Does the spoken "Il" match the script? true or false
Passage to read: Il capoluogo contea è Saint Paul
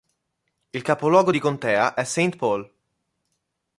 true